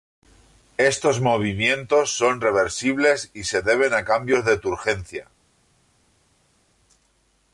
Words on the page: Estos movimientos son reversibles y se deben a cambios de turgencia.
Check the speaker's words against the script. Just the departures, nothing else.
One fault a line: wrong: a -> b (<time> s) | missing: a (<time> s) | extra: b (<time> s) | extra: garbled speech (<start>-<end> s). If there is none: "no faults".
no faults